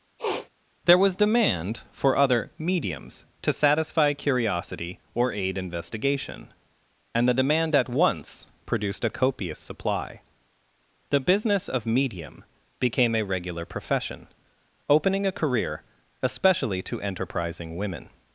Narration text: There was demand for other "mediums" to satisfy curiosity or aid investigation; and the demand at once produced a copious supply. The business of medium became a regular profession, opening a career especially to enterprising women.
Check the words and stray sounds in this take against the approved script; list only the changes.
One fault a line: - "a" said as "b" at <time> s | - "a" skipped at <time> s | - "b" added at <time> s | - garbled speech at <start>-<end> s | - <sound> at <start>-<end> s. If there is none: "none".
- sniff at 0.2-0.5 s